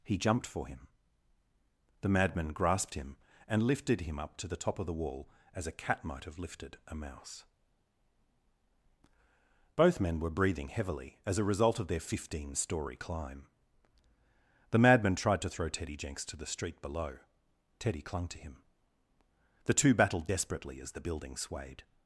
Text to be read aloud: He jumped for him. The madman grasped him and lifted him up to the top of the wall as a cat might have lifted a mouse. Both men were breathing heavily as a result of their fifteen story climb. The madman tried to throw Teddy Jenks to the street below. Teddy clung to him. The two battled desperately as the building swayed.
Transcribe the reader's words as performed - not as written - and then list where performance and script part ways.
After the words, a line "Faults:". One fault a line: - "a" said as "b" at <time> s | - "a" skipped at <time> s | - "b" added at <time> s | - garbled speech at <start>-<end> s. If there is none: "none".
He jumped for him. The madman grasped him and lifted him up to the top of the wall as a cat might have lifted a mouse. Both men were breathing heavily as a result of their fifteen story climb. The madman tried to throw Teddy Jenks to the street below. Teddy clung to him. The two battled desperately as the building swayed.
Faults:
none